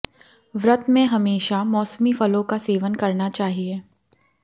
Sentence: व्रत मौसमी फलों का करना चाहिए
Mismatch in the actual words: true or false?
true